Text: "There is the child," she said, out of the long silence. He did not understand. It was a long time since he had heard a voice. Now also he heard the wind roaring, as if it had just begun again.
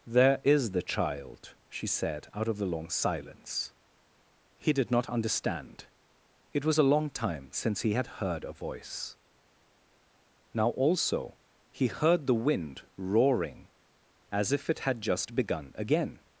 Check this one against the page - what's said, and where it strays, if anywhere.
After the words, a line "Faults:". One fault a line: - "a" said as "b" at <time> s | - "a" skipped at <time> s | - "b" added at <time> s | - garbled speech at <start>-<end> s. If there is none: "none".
"There is the child," she said, out of the long silence. He did not understand. It was a long time since he had heard a voice. Now also he heard the wind roaring, as if it had just begun again.
Faults:
none